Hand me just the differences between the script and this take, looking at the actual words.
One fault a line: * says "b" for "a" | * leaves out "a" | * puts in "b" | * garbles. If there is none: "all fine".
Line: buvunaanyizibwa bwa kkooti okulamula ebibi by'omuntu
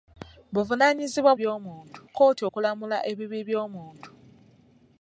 * says "by'omuntu" for "bwa"